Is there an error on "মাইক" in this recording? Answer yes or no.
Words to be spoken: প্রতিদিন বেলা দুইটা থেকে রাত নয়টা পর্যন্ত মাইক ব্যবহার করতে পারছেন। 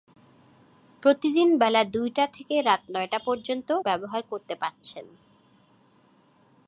yes